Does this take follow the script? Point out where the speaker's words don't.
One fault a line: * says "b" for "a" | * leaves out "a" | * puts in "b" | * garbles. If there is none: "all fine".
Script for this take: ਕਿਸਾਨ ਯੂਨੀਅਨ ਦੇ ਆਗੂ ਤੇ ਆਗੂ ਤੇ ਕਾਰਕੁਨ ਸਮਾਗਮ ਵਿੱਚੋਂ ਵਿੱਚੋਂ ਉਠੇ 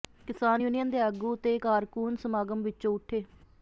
* leaves out "ਆਗੂ ਤੇ"
* leaves out "ਵਿੱਚੋਂ"